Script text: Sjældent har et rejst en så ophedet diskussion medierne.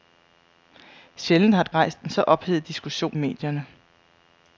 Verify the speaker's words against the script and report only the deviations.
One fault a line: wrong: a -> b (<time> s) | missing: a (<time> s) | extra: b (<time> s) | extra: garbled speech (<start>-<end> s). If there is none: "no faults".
no faults